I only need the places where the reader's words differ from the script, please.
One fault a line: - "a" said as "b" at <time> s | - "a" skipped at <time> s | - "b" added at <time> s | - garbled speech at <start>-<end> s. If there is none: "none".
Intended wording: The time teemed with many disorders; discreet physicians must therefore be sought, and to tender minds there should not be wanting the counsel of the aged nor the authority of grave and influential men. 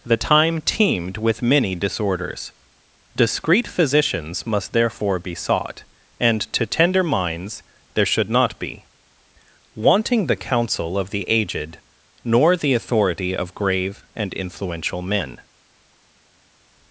none